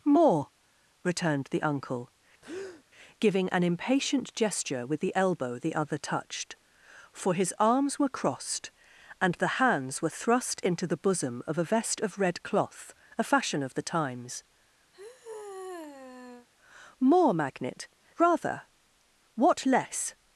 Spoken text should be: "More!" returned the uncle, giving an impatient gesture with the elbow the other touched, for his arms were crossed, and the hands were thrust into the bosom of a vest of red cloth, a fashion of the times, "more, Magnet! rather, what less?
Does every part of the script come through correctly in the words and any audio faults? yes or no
no